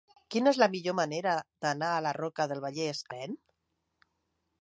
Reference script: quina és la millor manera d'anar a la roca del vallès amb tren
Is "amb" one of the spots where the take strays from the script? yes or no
yes